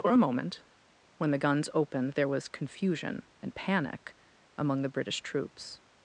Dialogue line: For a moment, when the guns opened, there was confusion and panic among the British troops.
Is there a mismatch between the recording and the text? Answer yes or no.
no